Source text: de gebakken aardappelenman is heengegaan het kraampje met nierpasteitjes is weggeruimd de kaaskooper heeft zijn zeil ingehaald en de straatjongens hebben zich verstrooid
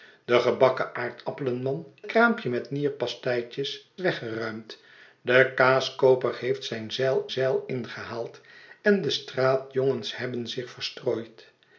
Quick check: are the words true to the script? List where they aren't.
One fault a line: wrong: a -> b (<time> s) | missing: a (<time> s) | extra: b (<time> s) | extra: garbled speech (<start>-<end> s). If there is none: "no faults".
missing: is heengegaan het (1.9 s)
missing: is (3.9 s)
extra: zeil (7.3 s)